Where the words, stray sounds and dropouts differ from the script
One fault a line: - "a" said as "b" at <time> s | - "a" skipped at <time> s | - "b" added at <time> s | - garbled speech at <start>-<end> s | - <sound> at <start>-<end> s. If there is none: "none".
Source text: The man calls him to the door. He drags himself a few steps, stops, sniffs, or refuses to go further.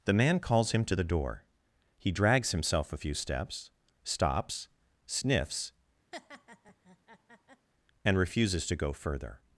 - laugh at 6.1-7.7 s
- "or" said as "and" at 8.0 s